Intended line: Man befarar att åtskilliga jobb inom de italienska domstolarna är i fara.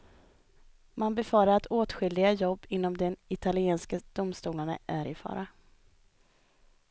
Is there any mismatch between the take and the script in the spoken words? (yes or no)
no